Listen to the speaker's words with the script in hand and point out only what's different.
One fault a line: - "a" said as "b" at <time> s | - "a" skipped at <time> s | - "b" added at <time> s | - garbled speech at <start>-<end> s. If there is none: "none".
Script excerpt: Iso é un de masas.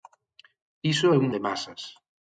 none